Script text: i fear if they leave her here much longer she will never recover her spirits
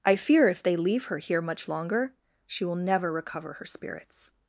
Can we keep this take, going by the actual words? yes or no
yes